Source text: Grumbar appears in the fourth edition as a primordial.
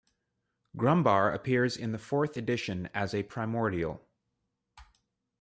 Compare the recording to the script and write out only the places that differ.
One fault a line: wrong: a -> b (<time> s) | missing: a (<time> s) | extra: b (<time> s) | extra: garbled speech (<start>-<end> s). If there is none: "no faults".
no faults